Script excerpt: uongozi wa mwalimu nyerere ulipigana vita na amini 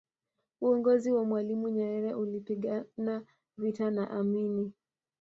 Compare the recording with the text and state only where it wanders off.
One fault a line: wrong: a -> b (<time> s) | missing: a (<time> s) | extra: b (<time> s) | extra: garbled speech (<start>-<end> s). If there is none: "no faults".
no faults